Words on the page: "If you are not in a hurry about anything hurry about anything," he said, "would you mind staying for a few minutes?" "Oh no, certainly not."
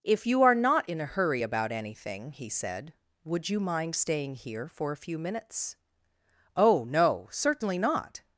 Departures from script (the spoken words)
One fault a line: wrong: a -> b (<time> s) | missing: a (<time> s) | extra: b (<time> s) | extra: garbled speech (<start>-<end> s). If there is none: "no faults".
missing: hurry about anything (2.3 s)
extra: here (4.3 s)